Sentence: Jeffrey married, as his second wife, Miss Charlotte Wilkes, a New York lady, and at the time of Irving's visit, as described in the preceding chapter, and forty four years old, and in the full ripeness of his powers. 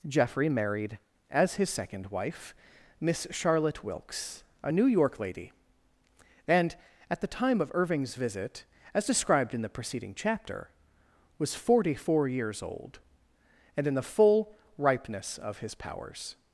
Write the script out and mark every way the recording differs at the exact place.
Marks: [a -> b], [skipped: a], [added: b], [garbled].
Jeffrey married, as his second wife, Miss Charlotte Wilkes, a New York lady, and at the time of Irving's visit, as described in the preceding chapter, [and -> was] forty four years old, and in the full ripeness of his powers.